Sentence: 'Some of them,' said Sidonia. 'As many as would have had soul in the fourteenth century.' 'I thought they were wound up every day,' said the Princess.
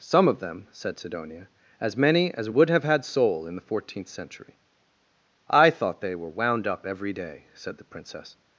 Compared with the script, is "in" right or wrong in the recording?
right